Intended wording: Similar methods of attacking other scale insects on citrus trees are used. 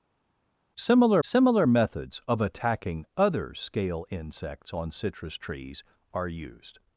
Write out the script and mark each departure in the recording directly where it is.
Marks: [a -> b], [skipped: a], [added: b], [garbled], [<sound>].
Similar [added: similar] methods of attacking other scale insects on citrus trees are used.